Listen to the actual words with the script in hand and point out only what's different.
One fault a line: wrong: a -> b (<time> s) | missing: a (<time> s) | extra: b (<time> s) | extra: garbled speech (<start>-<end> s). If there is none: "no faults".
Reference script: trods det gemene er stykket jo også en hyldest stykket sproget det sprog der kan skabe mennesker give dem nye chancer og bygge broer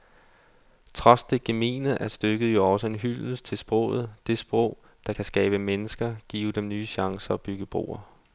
wrong: stykket -> til (3.5 s)